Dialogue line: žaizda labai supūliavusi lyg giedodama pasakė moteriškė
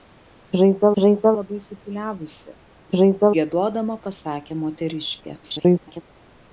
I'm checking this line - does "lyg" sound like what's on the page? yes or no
no